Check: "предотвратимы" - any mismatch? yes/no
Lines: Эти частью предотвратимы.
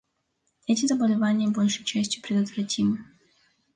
no